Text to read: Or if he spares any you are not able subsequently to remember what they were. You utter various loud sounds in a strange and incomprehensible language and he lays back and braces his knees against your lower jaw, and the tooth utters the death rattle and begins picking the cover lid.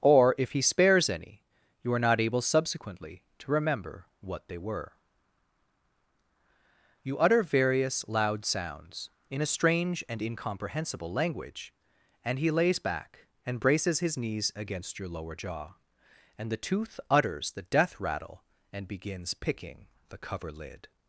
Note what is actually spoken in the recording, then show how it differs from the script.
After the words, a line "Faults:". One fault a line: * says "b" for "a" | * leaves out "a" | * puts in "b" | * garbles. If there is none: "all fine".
Or if he spares any you are not able subsequently to remember what they were. You utter various loud sounds in a strange and incomprehensible language and he lays back and braces his knees against your lower jaw, and the tooth utters the death rattle and begins picking the cover lid.
Faults:
all fine